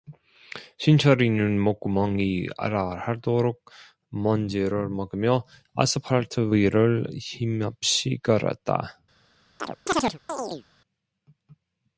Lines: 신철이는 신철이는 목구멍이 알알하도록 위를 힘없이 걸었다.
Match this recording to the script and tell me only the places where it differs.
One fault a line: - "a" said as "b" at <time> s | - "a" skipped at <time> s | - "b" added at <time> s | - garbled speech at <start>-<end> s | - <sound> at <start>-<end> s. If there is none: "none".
- "신철이는" skipped at 1.6 s
- "먼지를 먹으며 아스팔트" added at 4.1 s
- chirp at 9.6-10.6 s